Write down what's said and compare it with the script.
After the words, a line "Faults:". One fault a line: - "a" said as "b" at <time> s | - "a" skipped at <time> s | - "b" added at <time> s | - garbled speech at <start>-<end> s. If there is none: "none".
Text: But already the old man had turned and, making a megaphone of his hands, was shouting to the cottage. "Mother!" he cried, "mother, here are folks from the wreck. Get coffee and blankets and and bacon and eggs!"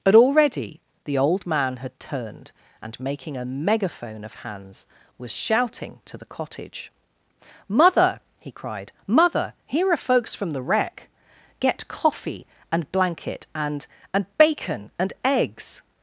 But already the old man had turned and, making a megaphone of hands, was shouting to the cottage. "Mother!" he cried, "mother, here are folks from the wreck. Get coffee and blanket and and bacon and eggs!"
Faults:
- "his" skipped at 4.3 s
- "blankets" said as "blanket" at 12.9 s